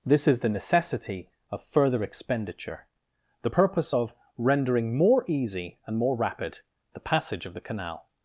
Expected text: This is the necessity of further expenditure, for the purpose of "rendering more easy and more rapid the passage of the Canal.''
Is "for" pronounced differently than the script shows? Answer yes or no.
yes